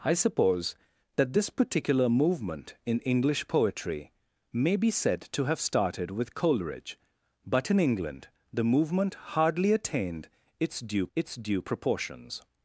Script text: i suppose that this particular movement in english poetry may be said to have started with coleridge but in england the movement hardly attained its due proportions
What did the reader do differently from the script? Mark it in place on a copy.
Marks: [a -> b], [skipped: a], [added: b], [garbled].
i suppose that this particular movement in english poetry may be said to have started with coleridge but in england the movement hardly attained its due [added: its due] proportions